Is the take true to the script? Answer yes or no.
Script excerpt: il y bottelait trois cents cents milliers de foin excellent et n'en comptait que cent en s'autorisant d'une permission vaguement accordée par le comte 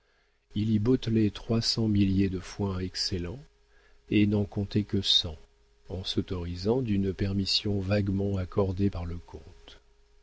no